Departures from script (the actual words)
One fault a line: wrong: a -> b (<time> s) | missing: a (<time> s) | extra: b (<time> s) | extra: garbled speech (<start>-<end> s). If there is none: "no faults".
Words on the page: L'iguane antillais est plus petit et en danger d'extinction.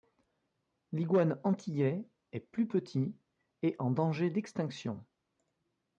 no faults